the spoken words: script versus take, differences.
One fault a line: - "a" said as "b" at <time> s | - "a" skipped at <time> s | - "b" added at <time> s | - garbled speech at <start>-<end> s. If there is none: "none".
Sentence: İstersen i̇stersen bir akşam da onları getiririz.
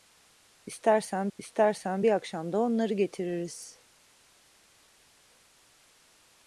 none